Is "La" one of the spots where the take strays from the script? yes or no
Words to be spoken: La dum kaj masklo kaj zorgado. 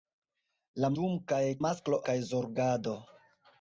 no